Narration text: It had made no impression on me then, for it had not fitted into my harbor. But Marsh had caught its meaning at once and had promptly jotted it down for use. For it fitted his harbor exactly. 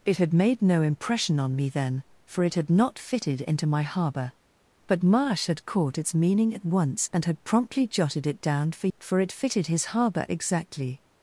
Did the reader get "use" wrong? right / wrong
wrong